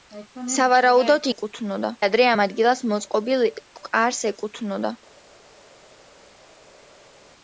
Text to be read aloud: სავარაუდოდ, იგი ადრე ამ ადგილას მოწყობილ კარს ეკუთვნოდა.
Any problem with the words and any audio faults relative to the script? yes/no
yes